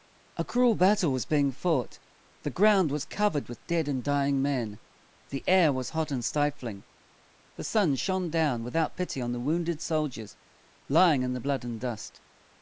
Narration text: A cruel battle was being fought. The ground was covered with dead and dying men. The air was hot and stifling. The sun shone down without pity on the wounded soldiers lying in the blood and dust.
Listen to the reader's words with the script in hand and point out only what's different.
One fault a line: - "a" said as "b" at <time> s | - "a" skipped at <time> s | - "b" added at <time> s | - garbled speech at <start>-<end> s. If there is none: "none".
none